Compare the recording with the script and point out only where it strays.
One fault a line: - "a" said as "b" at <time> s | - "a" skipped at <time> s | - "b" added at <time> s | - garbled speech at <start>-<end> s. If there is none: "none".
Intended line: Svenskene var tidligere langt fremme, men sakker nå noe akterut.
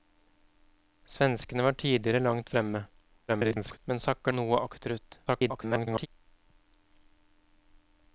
- garbled speech at 3.3-3.8 s
- "nå" skipped at 4.3 s
- garbled speech at 5.3-6.1 s